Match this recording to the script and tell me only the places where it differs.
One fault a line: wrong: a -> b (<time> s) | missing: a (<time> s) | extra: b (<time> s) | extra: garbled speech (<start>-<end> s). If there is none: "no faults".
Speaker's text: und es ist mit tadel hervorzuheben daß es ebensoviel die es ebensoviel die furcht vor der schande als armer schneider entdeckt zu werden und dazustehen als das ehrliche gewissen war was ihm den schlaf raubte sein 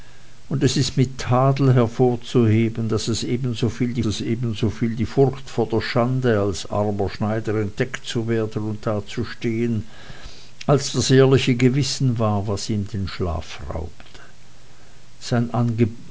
no faults